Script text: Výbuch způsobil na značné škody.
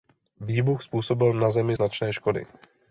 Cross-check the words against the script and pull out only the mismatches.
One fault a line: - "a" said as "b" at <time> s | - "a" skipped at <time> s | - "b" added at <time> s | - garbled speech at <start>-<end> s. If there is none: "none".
- "zemi" added at 1.5 s